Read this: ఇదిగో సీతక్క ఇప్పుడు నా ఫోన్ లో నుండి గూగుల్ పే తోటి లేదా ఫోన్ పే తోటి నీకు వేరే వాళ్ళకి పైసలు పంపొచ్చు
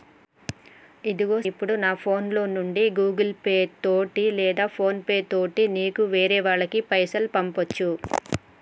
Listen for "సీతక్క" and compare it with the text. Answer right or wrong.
wrong